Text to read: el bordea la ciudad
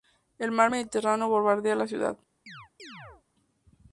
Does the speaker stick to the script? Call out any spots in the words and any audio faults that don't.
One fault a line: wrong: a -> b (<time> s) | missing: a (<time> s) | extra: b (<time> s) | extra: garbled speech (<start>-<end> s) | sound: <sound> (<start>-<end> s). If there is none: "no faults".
extra: mar mediterráneo (0.5 s)
sound: chirp (2.5-3.2 s)